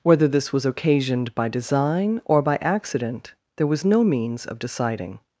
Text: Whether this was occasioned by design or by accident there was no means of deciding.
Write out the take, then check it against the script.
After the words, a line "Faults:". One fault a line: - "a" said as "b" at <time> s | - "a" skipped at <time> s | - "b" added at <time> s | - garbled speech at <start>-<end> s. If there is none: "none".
Whether this was occasioned by design or by accident there was no means of deciding.
Faults:
none